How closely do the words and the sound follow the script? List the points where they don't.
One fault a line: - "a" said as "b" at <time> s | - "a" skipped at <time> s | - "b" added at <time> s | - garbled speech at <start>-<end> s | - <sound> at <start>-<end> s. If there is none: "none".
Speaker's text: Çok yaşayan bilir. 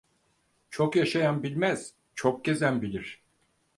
- "bilmez çok gezen" added at 1.4 s